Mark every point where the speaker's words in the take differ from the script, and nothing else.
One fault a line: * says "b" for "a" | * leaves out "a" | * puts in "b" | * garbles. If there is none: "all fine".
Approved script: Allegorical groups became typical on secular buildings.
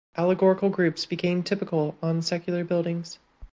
all fine